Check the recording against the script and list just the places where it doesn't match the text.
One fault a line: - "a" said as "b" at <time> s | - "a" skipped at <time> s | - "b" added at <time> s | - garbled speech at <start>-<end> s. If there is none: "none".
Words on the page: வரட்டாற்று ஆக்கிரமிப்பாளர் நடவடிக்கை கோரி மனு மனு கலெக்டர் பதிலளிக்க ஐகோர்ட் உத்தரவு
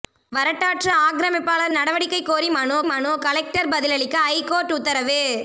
none